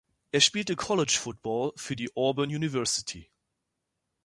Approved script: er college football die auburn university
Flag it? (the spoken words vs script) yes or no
yes